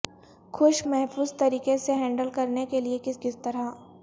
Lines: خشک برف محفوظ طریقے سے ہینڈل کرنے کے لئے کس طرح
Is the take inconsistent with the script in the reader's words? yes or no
yes